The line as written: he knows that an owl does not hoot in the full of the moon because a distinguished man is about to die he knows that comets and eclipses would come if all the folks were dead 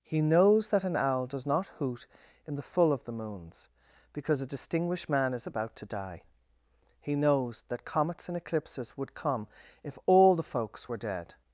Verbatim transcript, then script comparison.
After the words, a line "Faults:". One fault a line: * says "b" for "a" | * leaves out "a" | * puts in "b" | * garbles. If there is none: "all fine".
he knows that an owl does not hoot in the full of the moons because a distinguished man is about to die he knows that comets and eclipses would come if all the folks were dead
Faults:
* says "moons" for "moon"